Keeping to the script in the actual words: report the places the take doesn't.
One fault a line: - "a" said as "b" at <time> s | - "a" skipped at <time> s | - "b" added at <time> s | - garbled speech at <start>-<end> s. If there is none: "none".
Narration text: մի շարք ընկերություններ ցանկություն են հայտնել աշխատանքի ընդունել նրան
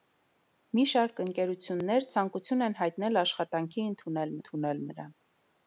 - "ընդունել" added at 4.4 s